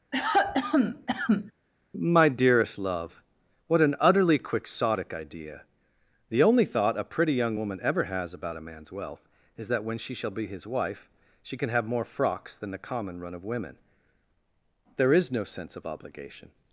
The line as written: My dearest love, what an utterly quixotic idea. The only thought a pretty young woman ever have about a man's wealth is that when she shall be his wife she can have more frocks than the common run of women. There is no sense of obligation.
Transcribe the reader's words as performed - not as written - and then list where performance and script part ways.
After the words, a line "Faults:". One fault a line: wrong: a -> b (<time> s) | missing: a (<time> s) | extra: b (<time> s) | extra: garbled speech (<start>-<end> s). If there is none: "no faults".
My dearest love, what an utterly quixotic idea. The only thought a pretty young woman ever has about a man's wealth is that when she shall be his wife she can have more frocks than the common run of women. There is no sense of obligation.
Faults:
wrong: have -> has (8.1 s)